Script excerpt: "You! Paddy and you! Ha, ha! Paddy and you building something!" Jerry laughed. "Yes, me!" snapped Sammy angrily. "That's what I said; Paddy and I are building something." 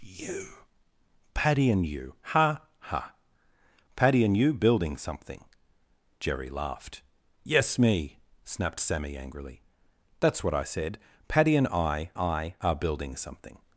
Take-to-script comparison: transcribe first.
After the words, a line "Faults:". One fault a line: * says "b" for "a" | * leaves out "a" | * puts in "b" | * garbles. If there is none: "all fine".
"You! Paddy and you! Ha, ha! Paddy and you building something!" Jerry laughed. "Yes, me!" snapped Sammy angrily. "That's what I said; Paddy and I I are building something."
Faults:
* puts in "I"